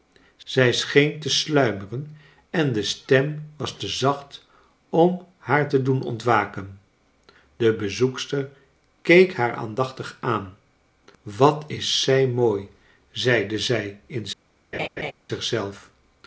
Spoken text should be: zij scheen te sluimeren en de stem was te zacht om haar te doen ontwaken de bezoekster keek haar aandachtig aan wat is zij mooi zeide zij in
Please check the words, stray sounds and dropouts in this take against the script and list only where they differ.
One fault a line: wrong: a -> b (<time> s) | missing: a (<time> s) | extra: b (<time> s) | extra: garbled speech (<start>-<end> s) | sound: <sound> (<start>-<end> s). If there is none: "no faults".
sound: laugh (14.7-15.1 s)